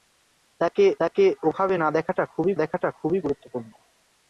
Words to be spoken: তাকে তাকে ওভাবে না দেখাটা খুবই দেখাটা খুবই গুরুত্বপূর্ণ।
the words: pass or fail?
pass